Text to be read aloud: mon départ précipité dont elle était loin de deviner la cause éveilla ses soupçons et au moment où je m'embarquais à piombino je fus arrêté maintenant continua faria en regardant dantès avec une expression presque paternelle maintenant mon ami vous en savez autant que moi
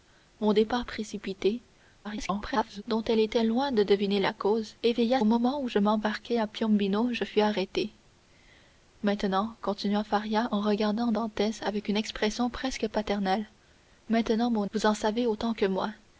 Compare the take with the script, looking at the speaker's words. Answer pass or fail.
fail